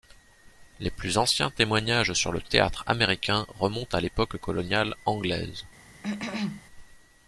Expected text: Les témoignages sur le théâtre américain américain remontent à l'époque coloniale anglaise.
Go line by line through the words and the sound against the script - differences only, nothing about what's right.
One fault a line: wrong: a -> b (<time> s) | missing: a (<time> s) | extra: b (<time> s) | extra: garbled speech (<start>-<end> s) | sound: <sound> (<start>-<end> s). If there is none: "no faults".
extra: plus anciens (0.9 s)
missing: américain (3.5 s)
sound: cough (6.0-6.6 s)